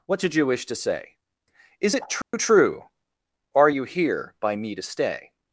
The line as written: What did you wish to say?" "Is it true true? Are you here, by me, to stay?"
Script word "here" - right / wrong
right